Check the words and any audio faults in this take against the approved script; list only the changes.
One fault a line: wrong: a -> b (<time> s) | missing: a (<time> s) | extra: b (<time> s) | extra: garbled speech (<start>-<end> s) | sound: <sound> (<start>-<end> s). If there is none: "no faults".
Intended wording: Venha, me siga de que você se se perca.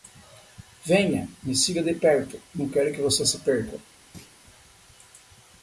extra: perto não quero (1.9 s)
missing: se (3.4 s)
sound: thud (4.1-4.4 s)